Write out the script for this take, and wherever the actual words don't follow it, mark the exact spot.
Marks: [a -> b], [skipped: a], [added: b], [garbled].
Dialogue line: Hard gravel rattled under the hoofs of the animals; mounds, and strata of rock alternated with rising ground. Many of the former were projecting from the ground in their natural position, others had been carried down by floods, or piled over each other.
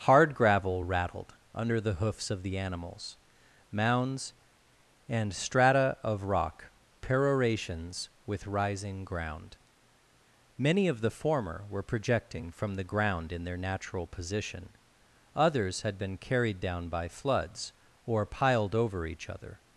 Hard gravel rattled under the hoofs of the animals; mounds, and strata of rock [alternated -> perorations] with rising ground. Many of the former were projecting from the ground in their natural position, others had been carried down by floods, or piled over each other.